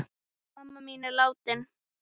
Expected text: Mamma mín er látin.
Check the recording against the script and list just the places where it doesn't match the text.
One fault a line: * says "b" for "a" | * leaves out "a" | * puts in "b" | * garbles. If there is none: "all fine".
all fine